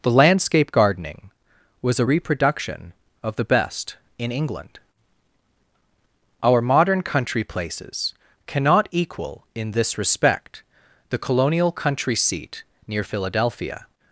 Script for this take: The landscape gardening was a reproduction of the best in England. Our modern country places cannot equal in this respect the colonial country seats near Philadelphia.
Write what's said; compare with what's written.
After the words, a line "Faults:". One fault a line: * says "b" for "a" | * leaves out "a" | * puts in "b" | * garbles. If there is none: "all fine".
The landscape gardening was a reproduction of the best in England. Our modern country places cannot equal in this respect the colonial country seat near Philadelphia.
Faults:
* says "seat" for "seats"